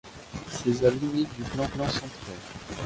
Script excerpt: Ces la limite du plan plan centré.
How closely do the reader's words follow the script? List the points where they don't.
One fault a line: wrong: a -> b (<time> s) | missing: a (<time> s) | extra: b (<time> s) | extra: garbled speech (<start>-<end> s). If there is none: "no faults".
no faults